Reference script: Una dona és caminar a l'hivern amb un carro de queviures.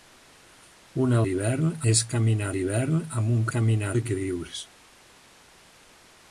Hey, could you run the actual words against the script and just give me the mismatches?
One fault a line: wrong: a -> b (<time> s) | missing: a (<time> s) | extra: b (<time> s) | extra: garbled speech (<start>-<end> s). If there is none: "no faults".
wrong: dona -> l'hivern (1.3 s)
missing: a (2.5 s)
wrong: carro -> caminar (3.5 s)